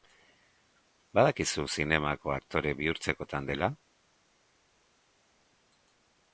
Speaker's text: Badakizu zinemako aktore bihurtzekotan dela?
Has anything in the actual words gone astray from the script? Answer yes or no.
no